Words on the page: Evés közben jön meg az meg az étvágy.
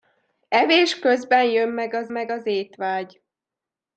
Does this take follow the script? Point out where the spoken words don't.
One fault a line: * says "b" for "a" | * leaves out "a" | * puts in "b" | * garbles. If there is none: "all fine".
all fine